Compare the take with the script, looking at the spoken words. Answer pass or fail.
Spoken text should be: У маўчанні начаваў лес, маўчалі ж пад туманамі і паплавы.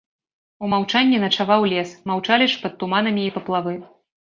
pass